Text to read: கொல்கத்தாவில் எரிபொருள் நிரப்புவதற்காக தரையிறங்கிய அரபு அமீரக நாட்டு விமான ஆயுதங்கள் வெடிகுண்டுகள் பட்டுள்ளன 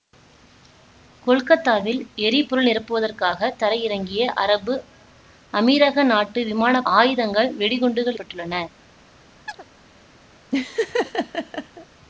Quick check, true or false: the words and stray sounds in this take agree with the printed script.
false